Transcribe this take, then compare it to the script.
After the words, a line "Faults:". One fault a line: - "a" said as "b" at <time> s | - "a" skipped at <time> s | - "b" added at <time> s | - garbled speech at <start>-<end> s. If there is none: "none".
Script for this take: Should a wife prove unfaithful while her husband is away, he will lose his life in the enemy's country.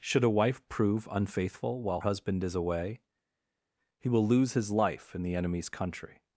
Should a wife prove unfaithful while husband is away, he will lose his life in the enemy's country.
Faults:
- "her" skipped at 2.0 s